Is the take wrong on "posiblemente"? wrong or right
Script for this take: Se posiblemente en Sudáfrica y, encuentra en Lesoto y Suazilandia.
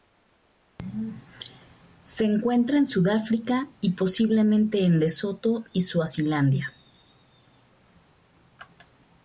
wrong